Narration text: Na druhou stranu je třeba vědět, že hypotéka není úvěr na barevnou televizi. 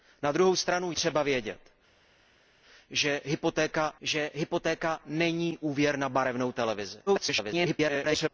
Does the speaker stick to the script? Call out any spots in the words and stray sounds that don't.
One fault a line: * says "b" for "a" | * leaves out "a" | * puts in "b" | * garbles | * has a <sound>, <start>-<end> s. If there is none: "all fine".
* leaves out "je"
* puts in "že hypotéka"
* garbles